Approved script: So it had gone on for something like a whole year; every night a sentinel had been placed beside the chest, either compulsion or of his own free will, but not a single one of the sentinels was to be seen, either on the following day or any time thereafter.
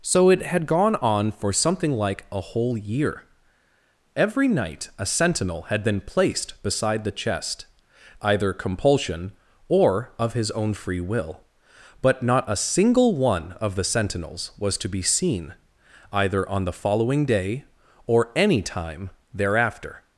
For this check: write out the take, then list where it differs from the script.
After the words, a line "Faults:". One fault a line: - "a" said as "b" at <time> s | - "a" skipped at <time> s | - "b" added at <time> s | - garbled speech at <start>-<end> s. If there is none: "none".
So it had gone on for something like a whole year; every night a sentinel had been placed beside the chest, either compulsion or of his own free will, but not a single one of the sentinels was to be seen, either on the following day or any time thereafter.
Faults:
none